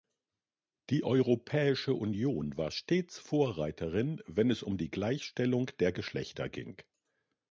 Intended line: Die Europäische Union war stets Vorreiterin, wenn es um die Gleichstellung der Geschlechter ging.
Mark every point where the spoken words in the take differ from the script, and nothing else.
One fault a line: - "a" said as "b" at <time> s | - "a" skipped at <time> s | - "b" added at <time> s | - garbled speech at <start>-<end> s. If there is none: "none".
none